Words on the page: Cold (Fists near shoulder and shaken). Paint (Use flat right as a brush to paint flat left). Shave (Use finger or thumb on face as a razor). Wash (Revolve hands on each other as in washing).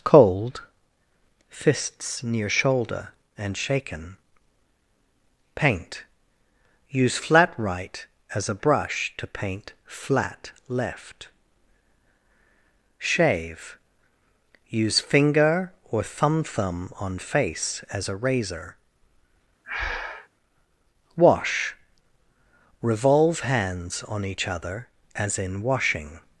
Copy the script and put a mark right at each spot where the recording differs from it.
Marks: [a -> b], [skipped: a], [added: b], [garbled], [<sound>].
Cold (Fists near shoulder and shaken). Paint (Use flat right as a brush to paint flat left). Shave (Use finger or thumb [added: thumb] on face as a razor). [breath] Wash (Revolve hands on each other as in washing).